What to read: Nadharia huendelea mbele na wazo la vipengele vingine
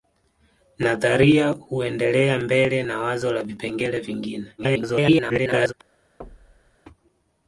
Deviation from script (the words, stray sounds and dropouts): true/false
true